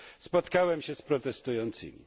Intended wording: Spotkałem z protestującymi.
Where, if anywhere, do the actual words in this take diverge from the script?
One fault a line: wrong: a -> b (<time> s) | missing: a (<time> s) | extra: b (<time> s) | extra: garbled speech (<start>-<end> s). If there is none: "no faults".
extra: się (0.8 s)